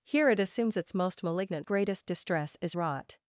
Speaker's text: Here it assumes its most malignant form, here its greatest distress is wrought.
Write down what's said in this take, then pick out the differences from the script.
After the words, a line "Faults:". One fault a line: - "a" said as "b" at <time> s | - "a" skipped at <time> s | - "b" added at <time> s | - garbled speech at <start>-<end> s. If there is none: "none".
Here it assumes its most malignant greatest distress is wrought.
Faults:
- "form here its" skipped at 1.7 s